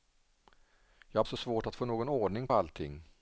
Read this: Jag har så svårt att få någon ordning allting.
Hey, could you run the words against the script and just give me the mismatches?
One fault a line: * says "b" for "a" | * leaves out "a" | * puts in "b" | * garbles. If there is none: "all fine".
all fine